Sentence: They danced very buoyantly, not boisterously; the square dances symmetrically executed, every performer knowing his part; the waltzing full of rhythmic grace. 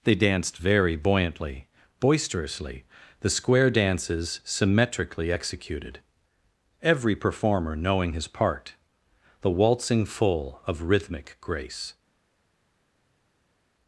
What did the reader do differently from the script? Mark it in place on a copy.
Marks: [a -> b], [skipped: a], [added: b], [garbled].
They danced very buoyantly, [skipped: not] boisterously; the square dances symmetrically executed, every performer knowing his part; the waltzing full of rhythmic grace.